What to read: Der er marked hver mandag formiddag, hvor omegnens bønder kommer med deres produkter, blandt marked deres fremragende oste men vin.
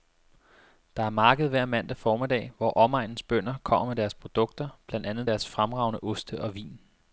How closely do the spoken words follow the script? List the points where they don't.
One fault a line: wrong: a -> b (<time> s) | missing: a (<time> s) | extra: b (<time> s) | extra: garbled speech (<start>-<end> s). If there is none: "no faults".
wrong: marked -> andet (5.1 s)
wrong: men -> og (6.4 s)